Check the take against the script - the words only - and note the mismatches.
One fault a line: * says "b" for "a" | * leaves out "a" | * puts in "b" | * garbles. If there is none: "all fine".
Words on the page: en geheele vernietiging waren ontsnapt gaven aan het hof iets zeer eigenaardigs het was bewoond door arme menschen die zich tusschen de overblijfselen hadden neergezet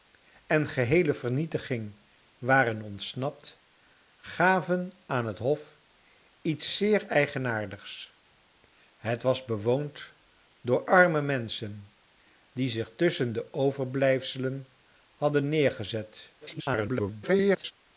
* garbles